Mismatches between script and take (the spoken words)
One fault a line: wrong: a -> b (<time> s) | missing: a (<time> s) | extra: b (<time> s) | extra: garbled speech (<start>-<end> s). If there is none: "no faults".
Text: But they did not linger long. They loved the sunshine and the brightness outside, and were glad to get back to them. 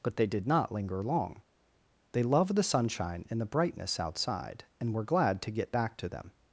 no faults